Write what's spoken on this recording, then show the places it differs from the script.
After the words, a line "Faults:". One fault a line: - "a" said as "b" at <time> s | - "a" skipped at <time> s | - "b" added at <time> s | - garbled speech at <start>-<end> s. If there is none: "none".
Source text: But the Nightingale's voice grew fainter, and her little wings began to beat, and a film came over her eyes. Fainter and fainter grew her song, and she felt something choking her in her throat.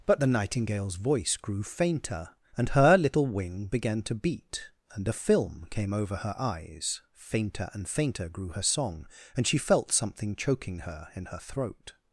But the Nightingale's voice grew fainter, and her little wing began to beat, and a film came over her eyes. Fainter and fainter grew her song, and she felt something choking her in her throat.
Faults:
- "wings" said as "wing" at 3.3 s